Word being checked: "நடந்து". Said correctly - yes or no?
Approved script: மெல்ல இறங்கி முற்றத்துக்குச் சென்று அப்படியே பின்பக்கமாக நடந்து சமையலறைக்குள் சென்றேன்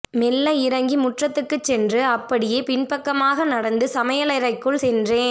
yes